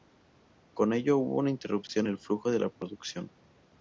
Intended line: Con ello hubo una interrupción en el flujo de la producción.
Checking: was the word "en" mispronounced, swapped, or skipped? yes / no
yes